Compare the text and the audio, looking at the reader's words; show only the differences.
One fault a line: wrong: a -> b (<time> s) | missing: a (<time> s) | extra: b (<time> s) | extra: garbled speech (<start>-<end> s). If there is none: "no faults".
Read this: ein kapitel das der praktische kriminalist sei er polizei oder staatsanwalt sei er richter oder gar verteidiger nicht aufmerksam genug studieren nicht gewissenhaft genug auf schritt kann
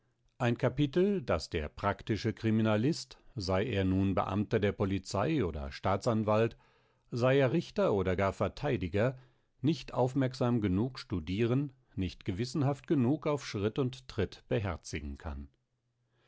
extra: nun beamter der (3.9 s)
extra: und tritt beherzigen (13.8 s)